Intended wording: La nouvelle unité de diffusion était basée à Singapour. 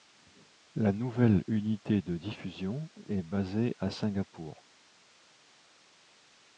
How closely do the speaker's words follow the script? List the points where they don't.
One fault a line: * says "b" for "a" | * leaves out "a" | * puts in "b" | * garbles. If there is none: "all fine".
* says "est" for "était"